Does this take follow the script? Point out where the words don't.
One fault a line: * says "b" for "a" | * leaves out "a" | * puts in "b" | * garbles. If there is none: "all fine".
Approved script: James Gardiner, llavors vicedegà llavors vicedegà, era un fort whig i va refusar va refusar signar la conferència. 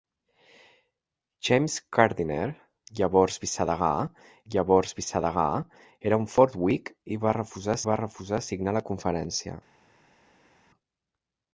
all fine